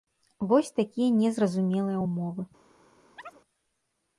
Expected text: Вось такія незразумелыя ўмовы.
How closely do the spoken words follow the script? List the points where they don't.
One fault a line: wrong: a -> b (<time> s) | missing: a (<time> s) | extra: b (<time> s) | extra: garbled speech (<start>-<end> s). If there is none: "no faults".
no faults